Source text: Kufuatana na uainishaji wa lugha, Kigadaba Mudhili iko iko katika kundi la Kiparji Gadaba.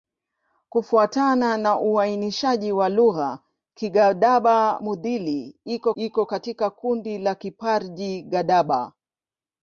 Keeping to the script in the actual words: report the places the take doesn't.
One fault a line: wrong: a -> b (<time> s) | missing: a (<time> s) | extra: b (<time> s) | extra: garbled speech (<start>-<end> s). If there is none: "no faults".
no faults